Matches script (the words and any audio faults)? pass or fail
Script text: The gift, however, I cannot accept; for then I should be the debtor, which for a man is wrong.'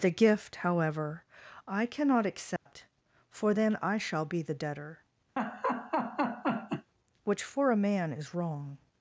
fail